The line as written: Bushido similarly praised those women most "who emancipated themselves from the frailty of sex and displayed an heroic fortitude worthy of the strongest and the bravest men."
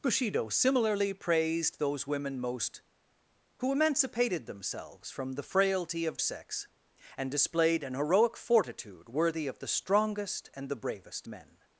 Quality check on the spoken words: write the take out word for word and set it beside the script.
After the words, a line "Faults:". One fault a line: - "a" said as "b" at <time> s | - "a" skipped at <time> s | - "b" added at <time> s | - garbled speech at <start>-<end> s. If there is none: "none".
Bushido similarly praised those women most "who emancipated themselves from the frailty of sex and displayed an heroic fortitude worthy of the strongest and the bravest men."
Faults:
none